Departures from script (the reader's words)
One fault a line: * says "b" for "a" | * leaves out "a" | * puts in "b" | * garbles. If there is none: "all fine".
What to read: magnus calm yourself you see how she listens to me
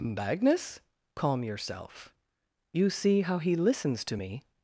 * says "he" for "she"